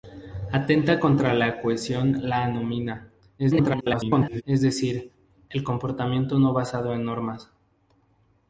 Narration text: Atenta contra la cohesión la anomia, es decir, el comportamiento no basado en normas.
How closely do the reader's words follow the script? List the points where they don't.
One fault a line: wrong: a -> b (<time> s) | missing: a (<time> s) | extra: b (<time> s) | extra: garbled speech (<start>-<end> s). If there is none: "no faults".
extra: garbled speech (3.4-4.4 s)